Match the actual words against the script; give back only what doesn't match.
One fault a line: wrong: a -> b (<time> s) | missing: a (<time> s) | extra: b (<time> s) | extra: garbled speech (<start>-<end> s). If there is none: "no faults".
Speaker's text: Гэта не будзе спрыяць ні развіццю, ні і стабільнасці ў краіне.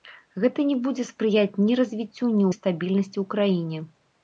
no faults